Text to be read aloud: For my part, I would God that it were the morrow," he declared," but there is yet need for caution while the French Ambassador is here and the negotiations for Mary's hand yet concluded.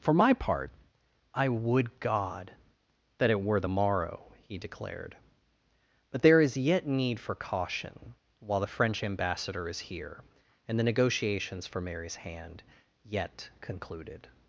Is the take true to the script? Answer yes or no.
yes